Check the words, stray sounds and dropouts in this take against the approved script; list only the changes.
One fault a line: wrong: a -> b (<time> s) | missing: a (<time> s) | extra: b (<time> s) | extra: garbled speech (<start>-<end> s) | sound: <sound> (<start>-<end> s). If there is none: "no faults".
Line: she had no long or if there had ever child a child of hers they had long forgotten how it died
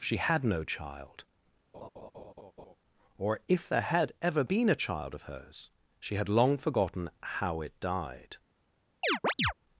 wrong: long -> child (0.6 s)
sound: laugh (1.7-2.8 s)
wrong: child -> been (4.4 s)
wrong: they -> she (6.0 s)
sound: chirp (9.0-9.5 s)